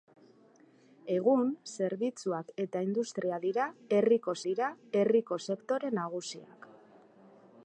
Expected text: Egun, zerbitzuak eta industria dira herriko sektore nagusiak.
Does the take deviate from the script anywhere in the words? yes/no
yes